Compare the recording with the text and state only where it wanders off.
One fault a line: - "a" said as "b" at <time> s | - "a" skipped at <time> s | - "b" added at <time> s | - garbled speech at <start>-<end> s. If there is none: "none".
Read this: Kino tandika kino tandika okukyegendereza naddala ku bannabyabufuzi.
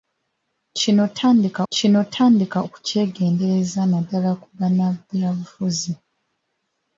none